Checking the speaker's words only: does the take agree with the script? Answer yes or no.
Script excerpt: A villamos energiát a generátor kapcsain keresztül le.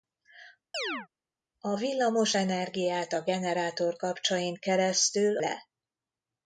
yes